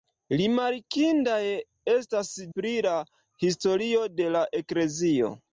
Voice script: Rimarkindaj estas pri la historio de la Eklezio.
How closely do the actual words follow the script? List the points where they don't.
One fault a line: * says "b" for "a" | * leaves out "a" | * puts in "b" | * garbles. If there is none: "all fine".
all fine